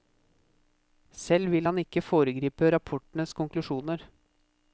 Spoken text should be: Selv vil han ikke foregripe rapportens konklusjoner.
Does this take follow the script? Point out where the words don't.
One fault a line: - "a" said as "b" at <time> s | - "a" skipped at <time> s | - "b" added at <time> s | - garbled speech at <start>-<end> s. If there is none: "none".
none